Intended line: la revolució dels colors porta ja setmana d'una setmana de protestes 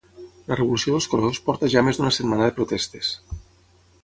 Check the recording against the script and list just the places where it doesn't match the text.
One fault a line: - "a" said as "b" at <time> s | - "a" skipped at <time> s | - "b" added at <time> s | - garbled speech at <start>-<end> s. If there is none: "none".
- "setmana" said as "més" at 1.9 s